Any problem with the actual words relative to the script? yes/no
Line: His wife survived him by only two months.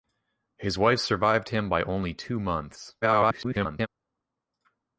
yes